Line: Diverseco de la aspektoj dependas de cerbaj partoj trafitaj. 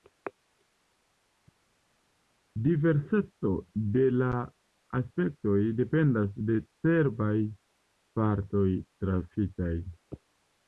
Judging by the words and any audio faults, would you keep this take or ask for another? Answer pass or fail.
pass